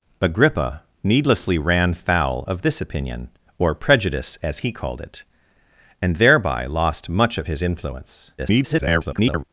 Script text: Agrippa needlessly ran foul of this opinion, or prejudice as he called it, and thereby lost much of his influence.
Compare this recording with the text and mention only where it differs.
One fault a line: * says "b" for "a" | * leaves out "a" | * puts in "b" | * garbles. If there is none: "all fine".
* garbles